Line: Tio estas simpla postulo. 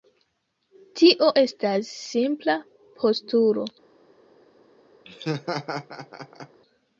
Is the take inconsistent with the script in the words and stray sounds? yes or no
yes